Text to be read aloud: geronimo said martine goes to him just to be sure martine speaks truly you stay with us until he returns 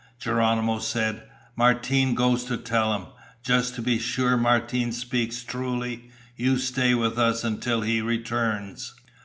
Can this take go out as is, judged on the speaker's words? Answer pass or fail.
fail